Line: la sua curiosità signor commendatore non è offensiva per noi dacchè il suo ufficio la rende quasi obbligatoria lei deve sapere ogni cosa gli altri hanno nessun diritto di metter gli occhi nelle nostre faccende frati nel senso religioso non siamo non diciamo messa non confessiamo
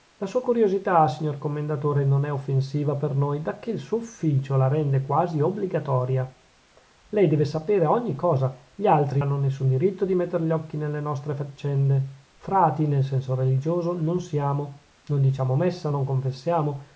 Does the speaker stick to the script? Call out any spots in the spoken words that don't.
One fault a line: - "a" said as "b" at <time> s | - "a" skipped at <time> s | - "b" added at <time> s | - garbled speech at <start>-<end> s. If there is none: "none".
none